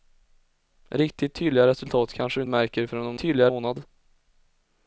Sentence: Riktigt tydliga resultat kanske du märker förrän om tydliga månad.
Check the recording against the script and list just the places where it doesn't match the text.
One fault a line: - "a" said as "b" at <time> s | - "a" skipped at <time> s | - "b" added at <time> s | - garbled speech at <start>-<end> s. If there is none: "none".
none